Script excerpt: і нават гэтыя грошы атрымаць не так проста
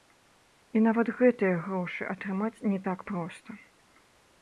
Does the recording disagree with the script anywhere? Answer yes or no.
no